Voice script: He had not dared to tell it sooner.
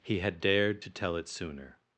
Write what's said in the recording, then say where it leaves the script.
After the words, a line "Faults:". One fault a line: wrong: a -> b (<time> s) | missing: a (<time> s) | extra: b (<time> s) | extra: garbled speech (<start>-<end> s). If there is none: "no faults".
He had dared to tell it sooner.
Faults:
missing: not (0.4 s)